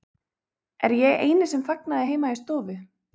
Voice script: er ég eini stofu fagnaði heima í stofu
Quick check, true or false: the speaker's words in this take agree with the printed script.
false